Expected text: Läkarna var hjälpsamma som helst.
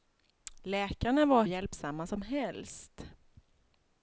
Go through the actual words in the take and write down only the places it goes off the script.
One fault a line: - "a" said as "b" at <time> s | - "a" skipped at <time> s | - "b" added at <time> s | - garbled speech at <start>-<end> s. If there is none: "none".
none